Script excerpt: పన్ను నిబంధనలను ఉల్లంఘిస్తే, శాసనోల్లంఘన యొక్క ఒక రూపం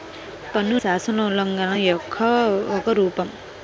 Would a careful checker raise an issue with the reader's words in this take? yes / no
yes